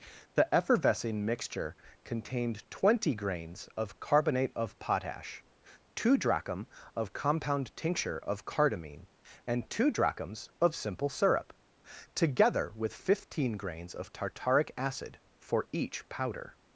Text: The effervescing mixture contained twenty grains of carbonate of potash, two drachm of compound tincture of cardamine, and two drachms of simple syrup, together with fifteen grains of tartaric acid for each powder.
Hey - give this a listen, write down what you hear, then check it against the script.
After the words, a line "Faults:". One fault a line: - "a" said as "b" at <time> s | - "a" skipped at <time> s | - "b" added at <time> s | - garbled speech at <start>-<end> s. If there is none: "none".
The effervescing mixture contained twenty grains of carbonate of potash, two drachm of compound tincture of cardamine, and two drachms of simple syrup, together with fifteen grains of tartaric acid for each powder.
Faults:
none